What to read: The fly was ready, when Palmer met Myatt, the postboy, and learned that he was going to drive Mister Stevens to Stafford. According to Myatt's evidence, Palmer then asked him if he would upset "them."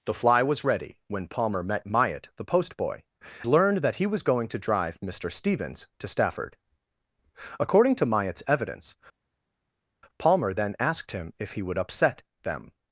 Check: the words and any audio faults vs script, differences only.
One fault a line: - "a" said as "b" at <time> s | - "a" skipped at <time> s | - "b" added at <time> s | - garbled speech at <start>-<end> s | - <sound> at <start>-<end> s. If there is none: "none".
- "and" skipped at 3.0 s